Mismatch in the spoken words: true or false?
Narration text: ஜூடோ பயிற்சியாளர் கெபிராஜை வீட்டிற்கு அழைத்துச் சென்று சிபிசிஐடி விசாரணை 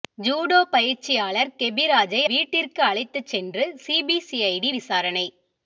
false